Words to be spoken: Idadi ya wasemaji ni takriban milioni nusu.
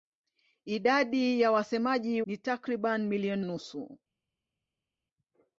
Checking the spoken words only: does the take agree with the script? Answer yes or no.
yes